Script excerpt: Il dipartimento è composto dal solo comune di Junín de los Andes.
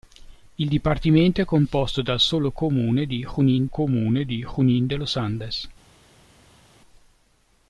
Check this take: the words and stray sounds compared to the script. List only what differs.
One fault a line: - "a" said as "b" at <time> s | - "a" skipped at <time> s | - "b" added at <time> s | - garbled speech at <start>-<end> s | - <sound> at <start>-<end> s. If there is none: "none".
- "comune di Junín" added at 3.7 s